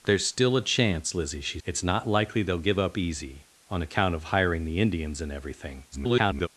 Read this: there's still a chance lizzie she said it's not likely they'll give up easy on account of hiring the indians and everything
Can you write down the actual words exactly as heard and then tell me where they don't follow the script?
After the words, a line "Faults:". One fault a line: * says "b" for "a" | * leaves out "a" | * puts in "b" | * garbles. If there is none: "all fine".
there's still a chance lizzie she it's not likely they'll give up easy on account of hiring the indians and everything [garbled]
Faults:
* leaves out "said"
* garbles